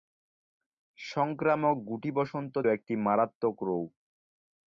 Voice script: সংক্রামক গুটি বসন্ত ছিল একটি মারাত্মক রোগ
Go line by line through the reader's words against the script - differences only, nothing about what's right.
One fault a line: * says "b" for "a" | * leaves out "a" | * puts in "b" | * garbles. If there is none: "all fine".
* leaves out "ছিল"